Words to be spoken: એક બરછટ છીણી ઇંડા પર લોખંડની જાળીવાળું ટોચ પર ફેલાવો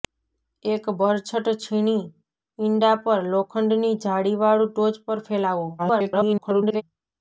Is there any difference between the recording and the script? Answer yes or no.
yes